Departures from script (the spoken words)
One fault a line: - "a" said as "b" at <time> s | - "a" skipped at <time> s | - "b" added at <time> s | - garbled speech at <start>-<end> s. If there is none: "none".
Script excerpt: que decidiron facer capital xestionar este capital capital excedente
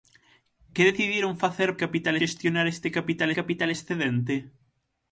none